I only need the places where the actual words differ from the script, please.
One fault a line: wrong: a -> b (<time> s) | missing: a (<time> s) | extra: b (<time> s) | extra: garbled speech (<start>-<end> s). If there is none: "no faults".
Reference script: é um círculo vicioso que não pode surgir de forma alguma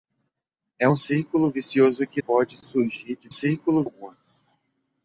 missing: não (2.2 s)
wrong: forma -> círculo (3.3 s)